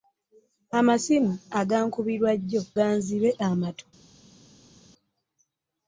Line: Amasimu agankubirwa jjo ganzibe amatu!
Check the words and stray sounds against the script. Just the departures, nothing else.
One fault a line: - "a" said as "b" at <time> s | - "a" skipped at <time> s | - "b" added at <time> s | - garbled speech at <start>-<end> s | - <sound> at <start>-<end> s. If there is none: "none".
none